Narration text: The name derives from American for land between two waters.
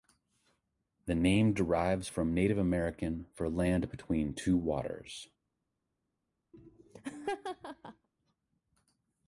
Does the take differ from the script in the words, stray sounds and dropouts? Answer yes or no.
yes